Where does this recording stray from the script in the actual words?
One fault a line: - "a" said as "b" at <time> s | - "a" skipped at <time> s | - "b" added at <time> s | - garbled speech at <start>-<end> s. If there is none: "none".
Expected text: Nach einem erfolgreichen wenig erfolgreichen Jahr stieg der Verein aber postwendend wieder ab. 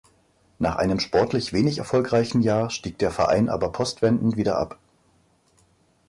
- "erfolgreichen" said as "sportlich" at 1.0 s